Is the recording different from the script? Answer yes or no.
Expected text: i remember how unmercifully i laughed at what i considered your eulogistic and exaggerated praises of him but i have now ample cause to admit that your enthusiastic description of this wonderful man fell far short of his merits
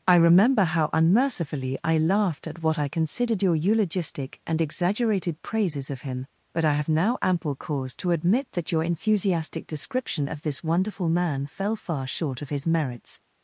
no